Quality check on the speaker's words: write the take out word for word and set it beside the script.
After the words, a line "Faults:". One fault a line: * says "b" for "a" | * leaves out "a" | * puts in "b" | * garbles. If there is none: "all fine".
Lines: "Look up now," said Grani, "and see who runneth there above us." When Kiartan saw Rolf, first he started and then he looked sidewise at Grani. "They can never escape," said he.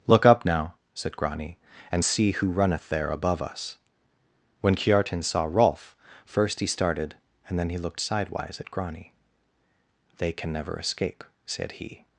"Look up now," said Grani, "and see who runneth there above us." When Kiartan saw Rolf, first he started and then he looked sidewise at Grani. "They can never escape," said he.
Faults:
all fine